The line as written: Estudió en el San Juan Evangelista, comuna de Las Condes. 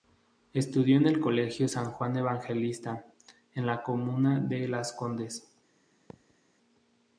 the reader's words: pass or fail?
fail